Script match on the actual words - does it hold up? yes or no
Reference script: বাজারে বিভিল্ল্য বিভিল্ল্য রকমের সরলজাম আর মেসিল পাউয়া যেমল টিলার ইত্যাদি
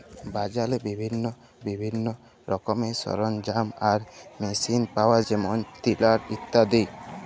yes